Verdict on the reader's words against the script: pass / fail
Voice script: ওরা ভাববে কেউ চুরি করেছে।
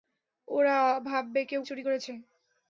pass